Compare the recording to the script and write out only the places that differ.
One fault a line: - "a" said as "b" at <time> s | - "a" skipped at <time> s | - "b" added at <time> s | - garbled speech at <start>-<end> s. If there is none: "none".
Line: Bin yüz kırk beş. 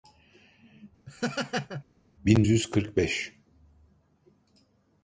none